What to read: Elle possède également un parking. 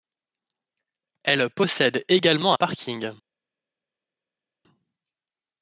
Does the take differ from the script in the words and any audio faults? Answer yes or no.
no